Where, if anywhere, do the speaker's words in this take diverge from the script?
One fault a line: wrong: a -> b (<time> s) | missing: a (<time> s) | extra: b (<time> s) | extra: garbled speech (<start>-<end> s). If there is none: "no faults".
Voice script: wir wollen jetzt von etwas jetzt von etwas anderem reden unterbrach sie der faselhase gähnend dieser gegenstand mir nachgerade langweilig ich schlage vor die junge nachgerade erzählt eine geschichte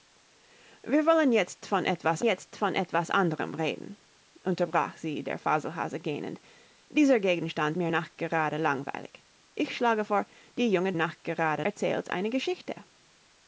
no faults